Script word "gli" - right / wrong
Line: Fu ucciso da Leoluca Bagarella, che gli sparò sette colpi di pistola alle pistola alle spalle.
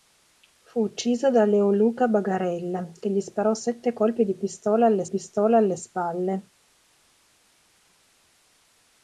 right